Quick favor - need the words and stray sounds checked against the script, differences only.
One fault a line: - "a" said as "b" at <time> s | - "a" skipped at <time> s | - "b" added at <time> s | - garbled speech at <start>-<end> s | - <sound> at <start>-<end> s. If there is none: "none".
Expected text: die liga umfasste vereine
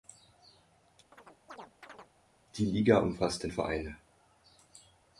- chirp at 1.1-2.1 s